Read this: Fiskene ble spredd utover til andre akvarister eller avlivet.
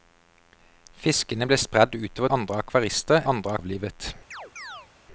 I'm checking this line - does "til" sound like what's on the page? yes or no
no